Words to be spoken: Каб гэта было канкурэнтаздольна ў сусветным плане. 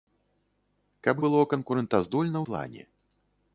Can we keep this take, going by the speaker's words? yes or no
no